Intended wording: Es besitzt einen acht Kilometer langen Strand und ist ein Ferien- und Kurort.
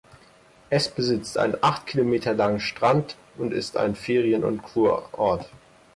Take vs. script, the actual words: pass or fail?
pass